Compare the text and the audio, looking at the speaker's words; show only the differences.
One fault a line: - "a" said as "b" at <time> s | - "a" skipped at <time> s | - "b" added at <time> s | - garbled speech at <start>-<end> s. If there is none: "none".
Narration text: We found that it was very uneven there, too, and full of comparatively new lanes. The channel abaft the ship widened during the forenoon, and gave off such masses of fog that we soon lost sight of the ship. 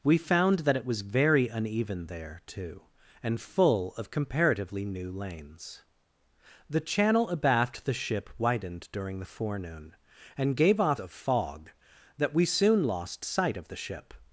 - "such masses" skipped at 11.0 s